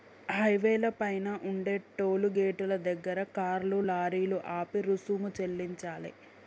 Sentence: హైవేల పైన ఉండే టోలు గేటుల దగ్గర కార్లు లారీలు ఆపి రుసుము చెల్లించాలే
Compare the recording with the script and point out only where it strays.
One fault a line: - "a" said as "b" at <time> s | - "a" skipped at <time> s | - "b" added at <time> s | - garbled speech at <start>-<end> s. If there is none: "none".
none